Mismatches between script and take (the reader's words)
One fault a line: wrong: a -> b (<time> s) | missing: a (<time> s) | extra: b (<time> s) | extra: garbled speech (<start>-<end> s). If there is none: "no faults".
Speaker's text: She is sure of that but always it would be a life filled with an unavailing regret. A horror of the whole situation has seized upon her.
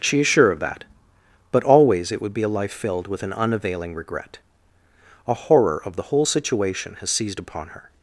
no faults